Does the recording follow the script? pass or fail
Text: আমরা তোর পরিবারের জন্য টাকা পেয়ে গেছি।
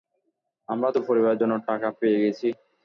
pass